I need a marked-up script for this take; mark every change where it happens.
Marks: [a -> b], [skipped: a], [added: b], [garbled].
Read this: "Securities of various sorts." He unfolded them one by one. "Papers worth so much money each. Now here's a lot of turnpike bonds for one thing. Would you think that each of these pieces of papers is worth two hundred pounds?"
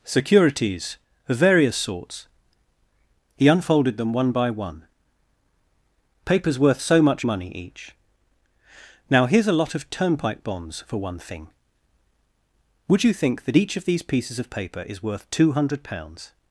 "Securities of various sorts." He unfolded them one by one. "Papers worth so much money each. Now here's a lot of turnpike bonds for one thing. Would you think that each of these pieces of [papers -> paper] is worth two hundred pounds?"